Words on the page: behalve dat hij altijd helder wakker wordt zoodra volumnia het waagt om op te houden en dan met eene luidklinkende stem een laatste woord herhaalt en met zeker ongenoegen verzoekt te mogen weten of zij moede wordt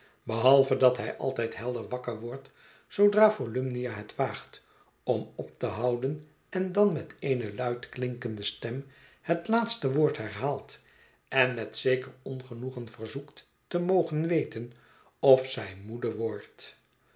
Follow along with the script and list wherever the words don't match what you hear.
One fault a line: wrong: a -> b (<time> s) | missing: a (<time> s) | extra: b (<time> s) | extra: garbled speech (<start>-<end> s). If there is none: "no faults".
wrong: een -> het (9.2 s)